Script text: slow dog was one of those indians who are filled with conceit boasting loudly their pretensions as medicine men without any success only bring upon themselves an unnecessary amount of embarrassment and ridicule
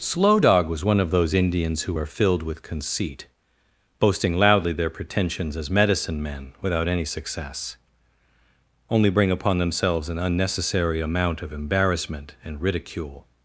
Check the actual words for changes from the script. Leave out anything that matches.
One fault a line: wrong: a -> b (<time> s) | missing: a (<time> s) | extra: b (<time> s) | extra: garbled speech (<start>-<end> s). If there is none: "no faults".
no faults